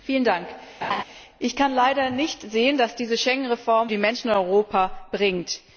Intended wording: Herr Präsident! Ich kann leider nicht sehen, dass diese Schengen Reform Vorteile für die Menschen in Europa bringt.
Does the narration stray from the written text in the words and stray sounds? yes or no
yes